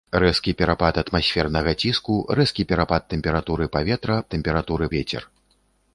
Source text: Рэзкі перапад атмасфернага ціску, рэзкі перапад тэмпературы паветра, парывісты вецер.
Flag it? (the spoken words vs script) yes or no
yes